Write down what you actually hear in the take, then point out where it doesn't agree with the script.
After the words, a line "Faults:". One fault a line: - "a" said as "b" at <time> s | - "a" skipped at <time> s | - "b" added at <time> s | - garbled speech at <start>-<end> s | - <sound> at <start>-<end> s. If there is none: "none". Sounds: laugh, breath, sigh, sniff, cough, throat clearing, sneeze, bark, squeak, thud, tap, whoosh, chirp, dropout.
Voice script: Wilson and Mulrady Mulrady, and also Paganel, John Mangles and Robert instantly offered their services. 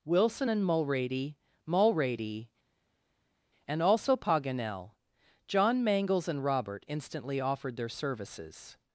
Wilson and Mulrady Mulrady, and also Paganel, John Mangles and Robert instantly offered their services.
Faults:
none